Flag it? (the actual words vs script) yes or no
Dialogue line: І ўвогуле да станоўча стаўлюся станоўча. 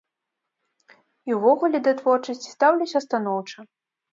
yes